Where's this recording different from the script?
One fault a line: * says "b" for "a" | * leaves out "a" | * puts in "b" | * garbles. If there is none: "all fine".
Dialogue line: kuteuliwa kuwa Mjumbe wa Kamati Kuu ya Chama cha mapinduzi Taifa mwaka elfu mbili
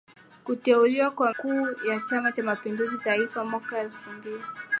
* leaves out "Mjumbe wa Kamati"